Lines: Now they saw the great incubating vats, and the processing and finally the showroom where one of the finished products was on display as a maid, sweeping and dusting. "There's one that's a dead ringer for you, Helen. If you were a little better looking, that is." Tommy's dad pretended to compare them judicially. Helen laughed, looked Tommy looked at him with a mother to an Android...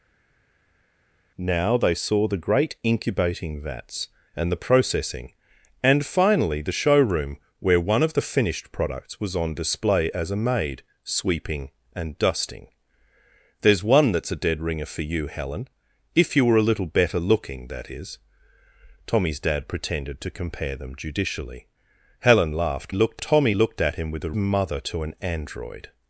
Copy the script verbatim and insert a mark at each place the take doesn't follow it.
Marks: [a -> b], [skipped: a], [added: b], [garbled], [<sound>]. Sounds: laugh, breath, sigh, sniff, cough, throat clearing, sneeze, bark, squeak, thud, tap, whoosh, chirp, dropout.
Now they saw the great incubating vats, and the processing and finally the showroom where one of the finished products was on display as a maid, sweeping and dusting. "There's one that's a dead ringer for you, Helen. If you were a little better looking, that is." Tommy's dad pretended to compare them judicially. Helen laughed, looked Tommy looked at him with a mother to an Android...